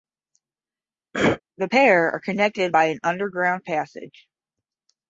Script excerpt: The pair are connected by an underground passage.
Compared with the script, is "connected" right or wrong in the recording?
right